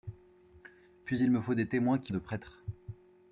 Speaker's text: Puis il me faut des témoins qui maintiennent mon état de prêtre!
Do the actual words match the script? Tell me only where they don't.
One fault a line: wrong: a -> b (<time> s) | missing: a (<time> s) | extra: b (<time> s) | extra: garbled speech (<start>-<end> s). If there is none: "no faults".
missing: maintiennent mon état (2.1 s)